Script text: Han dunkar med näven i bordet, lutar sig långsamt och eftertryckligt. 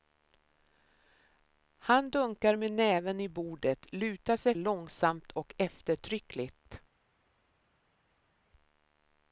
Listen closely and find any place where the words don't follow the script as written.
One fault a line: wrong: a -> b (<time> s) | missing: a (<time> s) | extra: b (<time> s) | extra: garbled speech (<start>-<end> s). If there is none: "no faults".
no faults